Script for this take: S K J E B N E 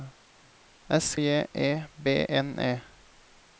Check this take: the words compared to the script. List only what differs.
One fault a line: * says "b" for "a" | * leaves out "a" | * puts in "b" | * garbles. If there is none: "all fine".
* leaves out "K"